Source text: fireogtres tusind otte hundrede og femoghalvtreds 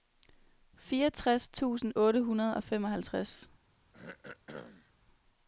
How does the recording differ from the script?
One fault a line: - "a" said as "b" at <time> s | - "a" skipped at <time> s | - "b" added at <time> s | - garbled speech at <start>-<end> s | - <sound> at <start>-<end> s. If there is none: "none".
- throat clearing at 3.9-4.9 s